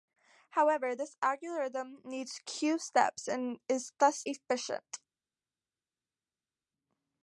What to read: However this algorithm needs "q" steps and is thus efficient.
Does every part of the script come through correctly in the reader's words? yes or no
yes